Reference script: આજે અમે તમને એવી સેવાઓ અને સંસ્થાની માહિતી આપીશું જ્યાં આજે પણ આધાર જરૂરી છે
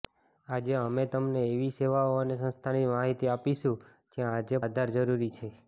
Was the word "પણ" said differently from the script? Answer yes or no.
yes